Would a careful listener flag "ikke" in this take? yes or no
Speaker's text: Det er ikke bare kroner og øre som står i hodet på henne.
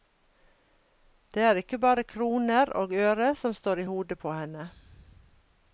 no